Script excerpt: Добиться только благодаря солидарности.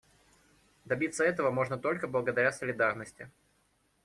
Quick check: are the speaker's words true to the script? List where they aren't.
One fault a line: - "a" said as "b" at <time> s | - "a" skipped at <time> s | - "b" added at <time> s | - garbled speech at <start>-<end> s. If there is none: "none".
- "этого можно" added at 1.2 s